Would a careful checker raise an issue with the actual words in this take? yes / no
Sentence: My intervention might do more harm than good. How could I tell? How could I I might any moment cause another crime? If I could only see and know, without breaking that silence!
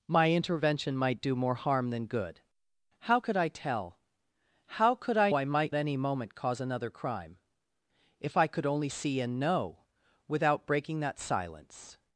no